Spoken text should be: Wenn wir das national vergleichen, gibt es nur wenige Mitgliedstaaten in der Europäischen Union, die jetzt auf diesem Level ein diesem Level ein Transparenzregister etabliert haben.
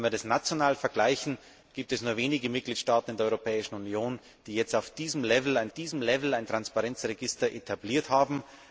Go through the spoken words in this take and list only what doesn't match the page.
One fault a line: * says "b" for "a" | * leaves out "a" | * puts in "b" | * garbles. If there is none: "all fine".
all fine